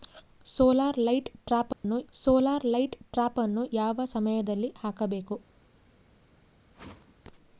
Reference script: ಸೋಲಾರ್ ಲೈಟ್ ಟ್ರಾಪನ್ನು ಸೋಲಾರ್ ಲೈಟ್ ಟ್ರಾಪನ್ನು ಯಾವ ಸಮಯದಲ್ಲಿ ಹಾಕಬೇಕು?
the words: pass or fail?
pass